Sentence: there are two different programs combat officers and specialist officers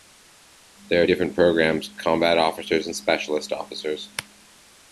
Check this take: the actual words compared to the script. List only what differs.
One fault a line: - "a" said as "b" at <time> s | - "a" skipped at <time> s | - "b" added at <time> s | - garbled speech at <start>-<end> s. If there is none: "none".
- "two" skipped at 1.1 s